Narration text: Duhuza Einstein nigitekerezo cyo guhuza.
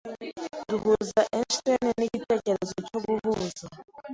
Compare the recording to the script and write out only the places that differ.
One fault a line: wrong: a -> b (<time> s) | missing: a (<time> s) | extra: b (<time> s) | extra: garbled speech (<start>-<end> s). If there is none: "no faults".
no faults